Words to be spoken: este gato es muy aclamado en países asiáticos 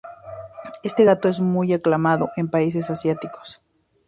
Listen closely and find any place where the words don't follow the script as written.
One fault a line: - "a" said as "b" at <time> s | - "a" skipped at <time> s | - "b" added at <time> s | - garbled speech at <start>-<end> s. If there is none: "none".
none